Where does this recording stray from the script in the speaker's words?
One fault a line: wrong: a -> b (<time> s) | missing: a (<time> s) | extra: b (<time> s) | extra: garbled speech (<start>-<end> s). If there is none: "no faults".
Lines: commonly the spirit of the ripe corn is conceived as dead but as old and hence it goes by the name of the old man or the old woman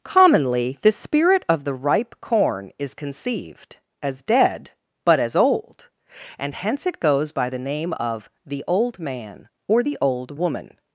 no faults